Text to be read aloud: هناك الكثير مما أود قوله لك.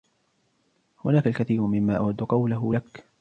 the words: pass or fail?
pass